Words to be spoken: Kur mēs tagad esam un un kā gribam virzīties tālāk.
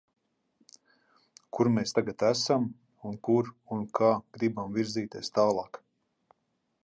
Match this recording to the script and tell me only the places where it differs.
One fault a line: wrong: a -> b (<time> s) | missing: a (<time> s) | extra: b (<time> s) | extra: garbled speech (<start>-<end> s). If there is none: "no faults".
extra: kur (3.3 s)